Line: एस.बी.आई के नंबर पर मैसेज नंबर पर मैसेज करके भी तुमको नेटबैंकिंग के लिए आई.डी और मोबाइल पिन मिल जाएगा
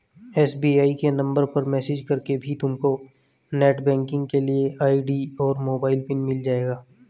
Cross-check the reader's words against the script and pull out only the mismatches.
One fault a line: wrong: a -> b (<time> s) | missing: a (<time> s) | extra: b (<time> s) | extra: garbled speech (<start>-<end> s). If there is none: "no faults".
missing: नंबर पर मैसेज (2.0 s)